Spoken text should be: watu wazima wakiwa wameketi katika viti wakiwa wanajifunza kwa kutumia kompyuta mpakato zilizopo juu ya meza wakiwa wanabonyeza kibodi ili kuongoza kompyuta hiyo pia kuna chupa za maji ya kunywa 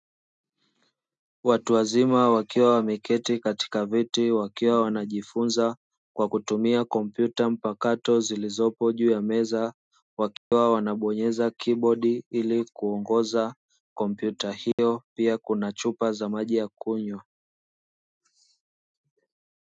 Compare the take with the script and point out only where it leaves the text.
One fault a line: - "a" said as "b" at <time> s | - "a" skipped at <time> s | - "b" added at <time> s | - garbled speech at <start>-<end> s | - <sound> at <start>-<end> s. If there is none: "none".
- dropout at 10.4-10.5 s
- dropout at 14.7-14.8 s